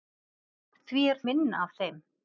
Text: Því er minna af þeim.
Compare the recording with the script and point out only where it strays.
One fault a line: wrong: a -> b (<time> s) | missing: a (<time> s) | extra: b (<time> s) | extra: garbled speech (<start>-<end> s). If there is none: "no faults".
no faults